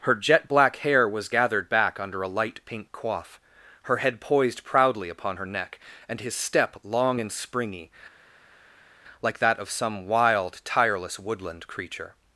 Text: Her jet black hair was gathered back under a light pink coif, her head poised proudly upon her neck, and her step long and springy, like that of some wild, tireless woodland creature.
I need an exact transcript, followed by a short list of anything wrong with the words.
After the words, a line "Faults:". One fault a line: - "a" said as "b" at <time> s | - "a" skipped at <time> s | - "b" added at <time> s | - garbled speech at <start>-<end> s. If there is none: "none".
Her jet black hair was gathered back under a light pink coif, her head poised proudly upon her neck, and his step long and springy, like that of some wild, tireless woodland creature.
Faults:
- "her" said as "his" at 6.2 s